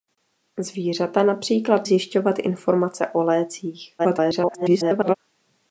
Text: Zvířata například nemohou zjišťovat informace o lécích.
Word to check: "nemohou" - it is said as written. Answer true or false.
false